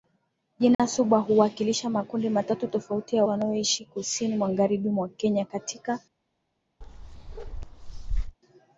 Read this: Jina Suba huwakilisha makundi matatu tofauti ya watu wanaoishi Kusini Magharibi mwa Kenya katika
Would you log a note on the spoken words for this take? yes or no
yes